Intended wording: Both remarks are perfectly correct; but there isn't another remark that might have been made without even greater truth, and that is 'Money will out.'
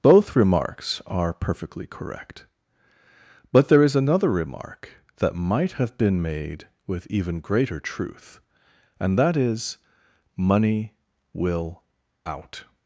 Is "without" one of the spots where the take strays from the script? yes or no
yes